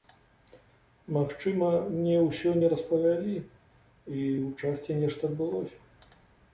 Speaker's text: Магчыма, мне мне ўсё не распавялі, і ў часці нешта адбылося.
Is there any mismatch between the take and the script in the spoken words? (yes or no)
yes